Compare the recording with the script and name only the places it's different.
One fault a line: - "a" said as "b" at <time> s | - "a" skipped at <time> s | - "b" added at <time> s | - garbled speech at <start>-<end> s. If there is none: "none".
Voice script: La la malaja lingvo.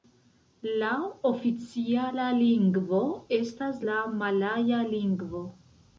- "oficiala lingvo estas" added at 1.3 s